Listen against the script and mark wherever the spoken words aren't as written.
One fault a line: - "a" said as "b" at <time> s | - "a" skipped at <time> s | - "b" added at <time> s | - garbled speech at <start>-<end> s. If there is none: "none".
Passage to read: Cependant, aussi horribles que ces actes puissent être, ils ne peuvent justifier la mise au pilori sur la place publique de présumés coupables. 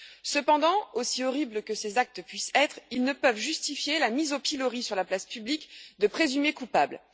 none